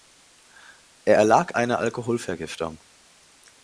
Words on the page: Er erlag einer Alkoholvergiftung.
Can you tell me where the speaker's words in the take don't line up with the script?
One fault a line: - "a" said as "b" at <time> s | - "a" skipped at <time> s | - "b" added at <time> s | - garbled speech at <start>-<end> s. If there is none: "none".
none